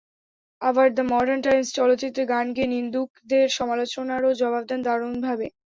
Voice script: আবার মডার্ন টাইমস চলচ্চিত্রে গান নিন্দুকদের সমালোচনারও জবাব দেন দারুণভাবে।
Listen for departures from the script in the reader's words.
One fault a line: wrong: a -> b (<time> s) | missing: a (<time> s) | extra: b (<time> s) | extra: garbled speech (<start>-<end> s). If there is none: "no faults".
extra: দ্য (0.9 s)
extra: গেয়ে (2.6 s)